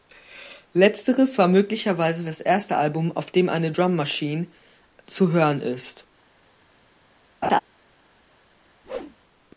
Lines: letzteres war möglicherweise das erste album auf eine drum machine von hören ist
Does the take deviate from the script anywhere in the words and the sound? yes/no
yes